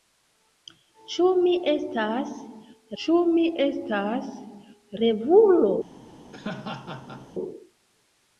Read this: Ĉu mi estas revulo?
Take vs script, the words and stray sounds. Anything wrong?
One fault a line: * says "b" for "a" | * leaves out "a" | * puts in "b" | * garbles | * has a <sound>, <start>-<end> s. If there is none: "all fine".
* puts in "ĉu mi estas"
* has a laugh, 6.3-7.3 s